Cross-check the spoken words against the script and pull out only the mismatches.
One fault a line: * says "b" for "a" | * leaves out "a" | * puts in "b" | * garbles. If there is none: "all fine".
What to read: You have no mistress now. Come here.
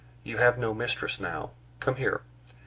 all fine